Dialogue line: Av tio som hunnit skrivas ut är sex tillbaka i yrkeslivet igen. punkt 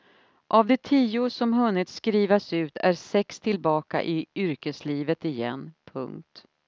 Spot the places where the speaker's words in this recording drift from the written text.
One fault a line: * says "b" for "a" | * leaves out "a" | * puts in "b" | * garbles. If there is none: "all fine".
* puts in "de"